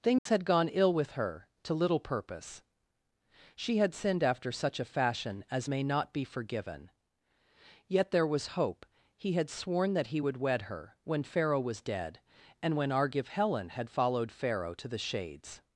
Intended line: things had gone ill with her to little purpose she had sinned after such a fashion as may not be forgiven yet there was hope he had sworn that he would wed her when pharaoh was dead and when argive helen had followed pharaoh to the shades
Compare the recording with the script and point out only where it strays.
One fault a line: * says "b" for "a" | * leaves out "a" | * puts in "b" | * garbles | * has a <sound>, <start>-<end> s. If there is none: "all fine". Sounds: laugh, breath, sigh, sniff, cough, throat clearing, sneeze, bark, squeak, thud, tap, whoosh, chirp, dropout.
* has a dropout, 0.2-0.3 s